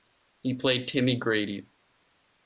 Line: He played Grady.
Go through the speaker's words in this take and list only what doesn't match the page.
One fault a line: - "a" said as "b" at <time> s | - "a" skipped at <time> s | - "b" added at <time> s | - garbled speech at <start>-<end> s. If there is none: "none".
- "Timmy" added at 0.9 s